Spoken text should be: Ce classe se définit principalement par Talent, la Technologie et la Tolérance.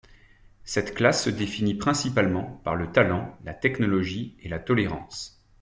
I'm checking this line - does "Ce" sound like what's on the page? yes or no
no